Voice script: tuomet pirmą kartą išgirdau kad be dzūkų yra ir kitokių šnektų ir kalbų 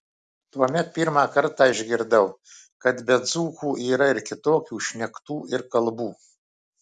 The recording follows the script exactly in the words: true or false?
true